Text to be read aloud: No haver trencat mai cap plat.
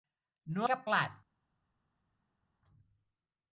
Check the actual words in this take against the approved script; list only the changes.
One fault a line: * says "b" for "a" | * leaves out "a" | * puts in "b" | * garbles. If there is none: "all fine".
* leaves out "haver trencat mai"